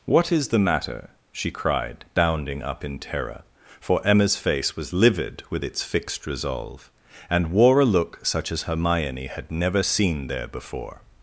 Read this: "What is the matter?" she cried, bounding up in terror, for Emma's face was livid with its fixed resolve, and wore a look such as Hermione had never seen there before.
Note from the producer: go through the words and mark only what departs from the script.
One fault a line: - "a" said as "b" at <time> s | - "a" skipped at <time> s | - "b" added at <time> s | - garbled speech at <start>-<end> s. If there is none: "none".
none